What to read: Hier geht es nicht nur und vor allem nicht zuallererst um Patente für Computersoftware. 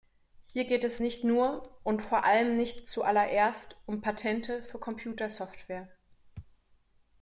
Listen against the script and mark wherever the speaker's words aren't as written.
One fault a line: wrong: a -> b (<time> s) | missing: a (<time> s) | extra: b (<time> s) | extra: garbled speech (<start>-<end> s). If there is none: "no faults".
no faults